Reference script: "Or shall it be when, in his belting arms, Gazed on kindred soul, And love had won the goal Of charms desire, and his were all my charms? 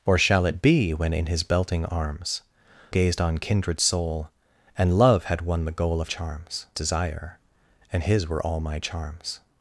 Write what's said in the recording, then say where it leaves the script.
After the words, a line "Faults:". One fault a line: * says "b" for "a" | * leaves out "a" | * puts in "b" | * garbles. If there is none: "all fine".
"Or shall it be when, in his belting arms, Gazed on kindred soul, And love had won the goal Of charms desire, and his were all my charms?
Faults:
all fine